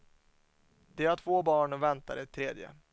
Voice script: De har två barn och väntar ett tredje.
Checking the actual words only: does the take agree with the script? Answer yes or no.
yes